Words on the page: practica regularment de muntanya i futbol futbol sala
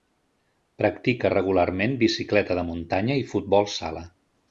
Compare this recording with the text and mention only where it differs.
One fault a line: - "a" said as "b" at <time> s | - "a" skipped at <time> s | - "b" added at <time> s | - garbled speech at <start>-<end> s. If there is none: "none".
- "bicicleta" added at 2.1 s
- "futbol" skipped at 3.7 s